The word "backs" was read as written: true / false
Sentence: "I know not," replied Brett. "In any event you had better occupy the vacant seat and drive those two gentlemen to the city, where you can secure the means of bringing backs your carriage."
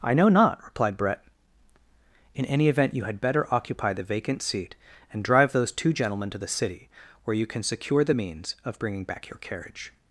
false